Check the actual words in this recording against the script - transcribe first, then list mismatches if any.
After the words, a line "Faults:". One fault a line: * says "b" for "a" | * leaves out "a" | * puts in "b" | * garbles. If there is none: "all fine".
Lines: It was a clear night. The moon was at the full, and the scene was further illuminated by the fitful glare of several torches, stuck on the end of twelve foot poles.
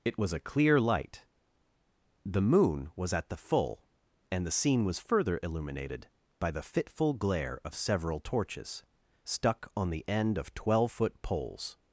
It was a clear light. The moon was at the full, and the scene was further illuminated by the fitful glare of several torches, stuck on the end of twelve foot poles.
Faults:
* says "light" for "night"